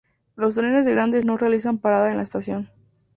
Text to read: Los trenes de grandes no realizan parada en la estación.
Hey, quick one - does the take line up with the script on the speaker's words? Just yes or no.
yes